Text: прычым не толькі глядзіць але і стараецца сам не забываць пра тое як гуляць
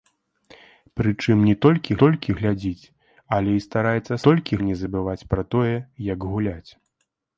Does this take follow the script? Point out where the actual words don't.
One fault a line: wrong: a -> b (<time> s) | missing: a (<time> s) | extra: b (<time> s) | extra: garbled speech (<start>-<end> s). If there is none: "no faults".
extra: толькі (2.0 s)
wrong: сам -> толькі (4.3 s)